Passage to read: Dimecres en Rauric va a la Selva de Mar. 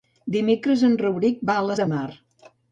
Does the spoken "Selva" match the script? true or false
false